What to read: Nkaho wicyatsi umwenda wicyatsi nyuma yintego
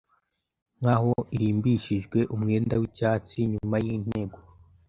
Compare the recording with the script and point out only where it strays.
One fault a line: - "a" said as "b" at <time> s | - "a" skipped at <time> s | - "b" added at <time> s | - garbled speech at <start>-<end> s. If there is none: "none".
- "wicyatsi" said as "irimbishijwe" at 1.4 s